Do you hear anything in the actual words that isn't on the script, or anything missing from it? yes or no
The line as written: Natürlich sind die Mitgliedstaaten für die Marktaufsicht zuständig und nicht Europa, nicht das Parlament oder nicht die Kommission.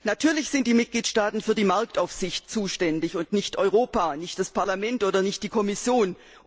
no